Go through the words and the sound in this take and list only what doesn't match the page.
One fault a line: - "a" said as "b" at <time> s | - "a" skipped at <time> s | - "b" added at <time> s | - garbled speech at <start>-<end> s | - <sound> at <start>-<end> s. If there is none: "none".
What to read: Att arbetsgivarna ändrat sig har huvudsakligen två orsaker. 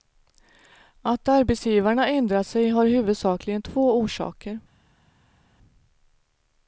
none